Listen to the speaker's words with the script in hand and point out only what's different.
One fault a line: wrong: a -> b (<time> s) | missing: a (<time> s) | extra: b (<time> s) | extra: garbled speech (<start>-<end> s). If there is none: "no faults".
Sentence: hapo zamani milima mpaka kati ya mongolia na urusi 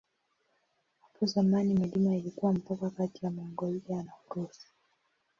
extra: ilikuwa (2.1 s)